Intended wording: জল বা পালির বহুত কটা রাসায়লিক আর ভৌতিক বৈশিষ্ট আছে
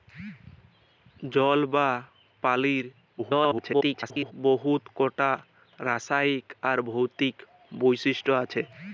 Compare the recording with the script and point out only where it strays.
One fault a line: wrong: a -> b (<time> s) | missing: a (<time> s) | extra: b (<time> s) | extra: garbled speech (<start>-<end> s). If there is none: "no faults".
extra: garbled speech (3.2-4.3 s)